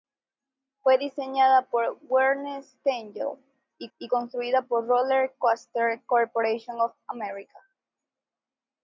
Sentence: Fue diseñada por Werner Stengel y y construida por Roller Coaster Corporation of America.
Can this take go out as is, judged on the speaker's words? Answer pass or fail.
pass